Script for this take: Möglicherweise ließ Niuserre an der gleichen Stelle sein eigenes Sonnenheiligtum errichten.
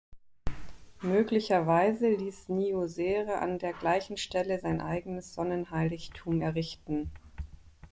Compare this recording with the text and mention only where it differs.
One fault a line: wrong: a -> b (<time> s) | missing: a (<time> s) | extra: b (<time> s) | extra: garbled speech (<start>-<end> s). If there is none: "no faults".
no faults